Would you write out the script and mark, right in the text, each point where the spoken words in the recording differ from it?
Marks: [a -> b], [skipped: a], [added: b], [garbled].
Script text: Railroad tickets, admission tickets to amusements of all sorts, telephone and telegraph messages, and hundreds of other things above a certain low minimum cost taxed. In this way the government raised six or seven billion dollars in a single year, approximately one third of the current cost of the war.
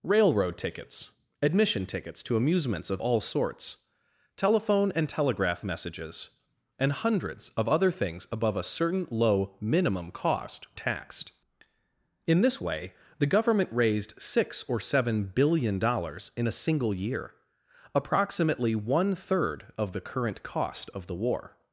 Railroad tickets, admission tickets to amusements of all sorts, telephone and telegraph messages, and hundreds of other things above a certain low minimum cost taxed. In this way the government raised six or seven billion dollars in a single year, approximately one third of the current cost of the war.